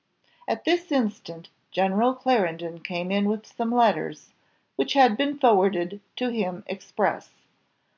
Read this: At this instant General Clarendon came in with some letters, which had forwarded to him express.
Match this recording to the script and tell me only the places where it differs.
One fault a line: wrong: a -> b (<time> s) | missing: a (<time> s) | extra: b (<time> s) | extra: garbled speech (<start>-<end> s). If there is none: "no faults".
extra: been (5.2 s)